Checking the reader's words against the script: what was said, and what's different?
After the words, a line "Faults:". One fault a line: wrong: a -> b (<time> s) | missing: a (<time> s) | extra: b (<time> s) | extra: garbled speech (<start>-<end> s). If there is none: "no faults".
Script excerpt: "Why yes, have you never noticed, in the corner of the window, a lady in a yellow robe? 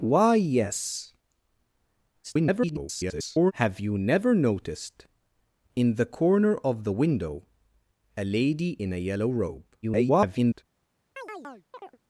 "Why yes, [garbled] have you never noticed, in the corner of the window, a lady in a yellow robe? [garbled]
Faults:
extra: garbled speech (2.2-3.5 s)
extra: garbled speech (9.8-10.6 s)